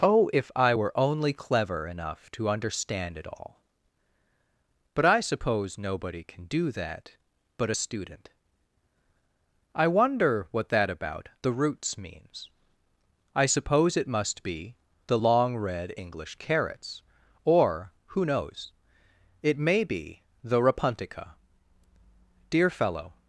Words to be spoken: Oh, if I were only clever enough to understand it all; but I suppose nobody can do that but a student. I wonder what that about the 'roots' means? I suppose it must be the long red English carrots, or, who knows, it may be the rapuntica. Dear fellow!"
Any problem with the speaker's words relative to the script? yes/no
no